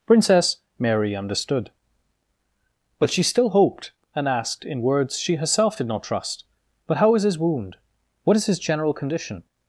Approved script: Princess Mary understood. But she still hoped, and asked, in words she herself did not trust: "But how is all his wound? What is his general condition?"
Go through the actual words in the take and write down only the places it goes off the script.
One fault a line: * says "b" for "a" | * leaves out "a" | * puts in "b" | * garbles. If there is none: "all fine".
* leaves out "all"